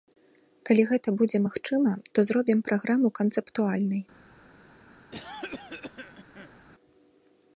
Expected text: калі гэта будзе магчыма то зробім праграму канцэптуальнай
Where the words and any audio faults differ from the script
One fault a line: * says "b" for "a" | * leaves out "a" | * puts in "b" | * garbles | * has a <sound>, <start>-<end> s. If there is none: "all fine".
* has a cough, 5.1-6.6 s